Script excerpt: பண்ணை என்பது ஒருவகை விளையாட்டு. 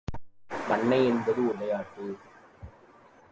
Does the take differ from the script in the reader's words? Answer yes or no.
yes